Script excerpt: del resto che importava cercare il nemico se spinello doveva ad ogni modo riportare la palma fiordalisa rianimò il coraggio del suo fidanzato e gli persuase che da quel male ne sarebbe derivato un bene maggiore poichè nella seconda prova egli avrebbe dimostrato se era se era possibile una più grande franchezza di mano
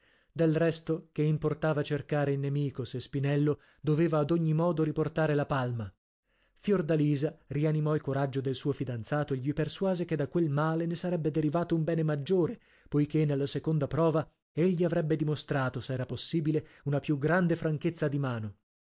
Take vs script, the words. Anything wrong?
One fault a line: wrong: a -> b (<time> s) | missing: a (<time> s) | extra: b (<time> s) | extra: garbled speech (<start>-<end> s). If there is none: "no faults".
missing: se era (16.0 s)